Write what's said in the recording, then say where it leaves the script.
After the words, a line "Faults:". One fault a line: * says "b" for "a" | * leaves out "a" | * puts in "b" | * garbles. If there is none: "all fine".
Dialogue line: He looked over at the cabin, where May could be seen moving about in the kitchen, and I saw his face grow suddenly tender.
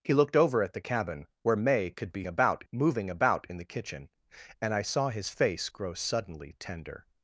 He looked over at the cabin, where May could be about moving about in the kitchen, and I saw his face grow suddenly tender.
Faults:
* says "about" for "seen"